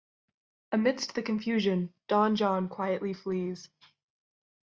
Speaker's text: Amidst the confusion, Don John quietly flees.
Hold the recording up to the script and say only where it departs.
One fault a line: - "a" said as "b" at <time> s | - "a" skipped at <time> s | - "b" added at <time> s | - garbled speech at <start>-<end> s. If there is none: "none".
none